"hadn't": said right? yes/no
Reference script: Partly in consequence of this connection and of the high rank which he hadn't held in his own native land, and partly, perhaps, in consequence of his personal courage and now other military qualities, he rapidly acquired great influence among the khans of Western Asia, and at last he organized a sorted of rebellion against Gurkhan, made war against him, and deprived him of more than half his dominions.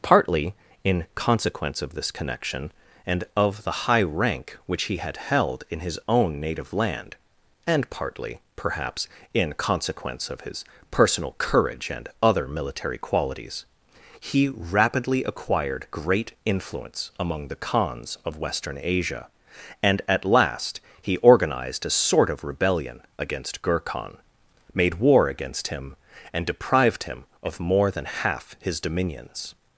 no